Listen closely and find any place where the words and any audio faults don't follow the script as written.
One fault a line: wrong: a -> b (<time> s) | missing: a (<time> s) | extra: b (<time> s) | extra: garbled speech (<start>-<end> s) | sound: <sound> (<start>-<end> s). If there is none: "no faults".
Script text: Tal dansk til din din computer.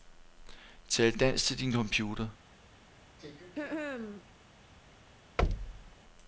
missing: din (1.7 s)
sound: throat clearing (3.2-4.2 s)
sound: thud (5.4-6.0 s)